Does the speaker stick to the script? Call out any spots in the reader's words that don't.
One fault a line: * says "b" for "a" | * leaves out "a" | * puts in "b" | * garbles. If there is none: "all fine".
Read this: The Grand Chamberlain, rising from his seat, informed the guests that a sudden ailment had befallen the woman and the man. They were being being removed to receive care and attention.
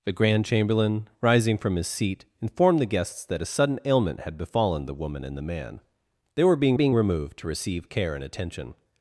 all fine